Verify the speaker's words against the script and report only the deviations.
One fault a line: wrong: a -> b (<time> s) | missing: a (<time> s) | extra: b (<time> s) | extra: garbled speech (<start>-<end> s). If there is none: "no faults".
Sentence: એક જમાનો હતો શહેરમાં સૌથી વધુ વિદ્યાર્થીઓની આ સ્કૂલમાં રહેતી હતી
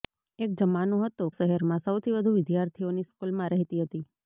no faults